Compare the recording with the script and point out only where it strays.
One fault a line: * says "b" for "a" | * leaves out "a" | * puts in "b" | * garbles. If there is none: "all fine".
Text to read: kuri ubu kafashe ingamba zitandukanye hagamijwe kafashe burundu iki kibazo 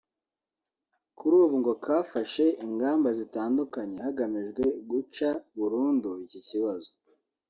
* puts in "ngo"
* says "guca" for "kafashe"